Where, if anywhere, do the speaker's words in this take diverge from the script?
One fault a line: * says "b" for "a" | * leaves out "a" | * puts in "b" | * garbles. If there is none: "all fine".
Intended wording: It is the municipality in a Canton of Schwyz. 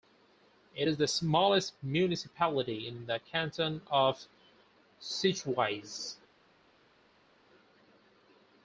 * puts in "smallest"
* says "the" for "a"